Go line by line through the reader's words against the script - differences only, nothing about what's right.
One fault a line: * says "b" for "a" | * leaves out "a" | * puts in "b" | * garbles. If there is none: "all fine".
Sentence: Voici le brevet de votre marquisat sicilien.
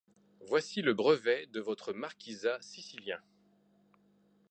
all fine